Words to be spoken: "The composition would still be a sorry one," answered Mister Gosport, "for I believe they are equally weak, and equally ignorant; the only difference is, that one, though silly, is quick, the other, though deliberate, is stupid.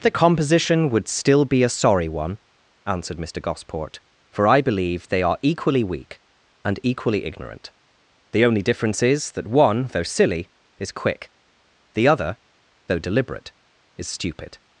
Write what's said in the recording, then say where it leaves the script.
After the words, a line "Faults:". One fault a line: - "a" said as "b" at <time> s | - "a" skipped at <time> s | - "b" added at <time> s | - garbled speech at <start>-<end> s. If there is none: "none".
"The composition would still be a sorry one," answered Mister Gosport, "for I believe they are equally weak, and equally ignorant; the only difference is, that one, though silly, is quick, the other, though deliberate, is stupid.
Faults:
none